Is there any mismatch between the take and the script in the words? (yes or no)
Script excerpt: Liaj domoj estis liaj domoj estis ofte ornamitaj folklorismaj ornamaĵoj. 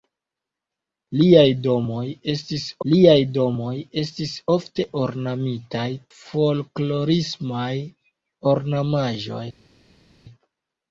no